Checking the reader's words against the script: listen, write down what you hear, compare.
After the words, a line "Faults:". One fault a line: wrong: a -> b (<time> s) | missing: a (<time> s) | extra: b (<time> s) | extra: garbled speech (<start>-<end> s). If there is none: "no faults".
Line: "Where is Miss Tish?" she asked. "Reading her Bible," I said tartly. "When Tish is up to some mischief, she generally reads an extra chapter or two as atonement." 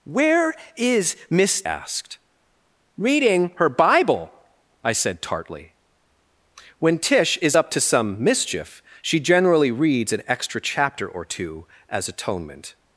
"Where is Miss Asked. "Reading her Bible," I said tartly. "When Tish is up to some mischief, she generally reads an extra chapter or two as atonement."
Faults:
missing: Tish she (1.6 s)